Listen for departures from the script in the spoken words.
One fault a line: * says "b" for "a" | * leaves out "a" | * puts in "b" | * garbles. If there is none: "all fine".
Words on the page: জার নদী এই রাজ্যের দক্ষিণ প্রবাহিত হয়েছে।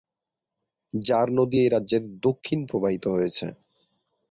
all fine